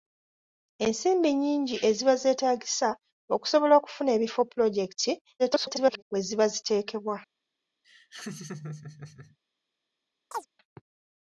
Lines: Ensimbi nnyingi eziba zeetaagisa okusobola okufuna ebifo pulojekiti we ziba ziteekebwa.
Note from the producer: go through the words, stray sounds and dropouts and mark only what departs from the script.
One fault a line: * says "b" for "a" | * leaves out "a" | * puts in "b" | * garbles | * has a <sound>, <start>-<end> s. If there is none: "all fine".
* garbles
* has a laugh, 7.8-9.4 s
* has a chirp, 10.3-10.5 s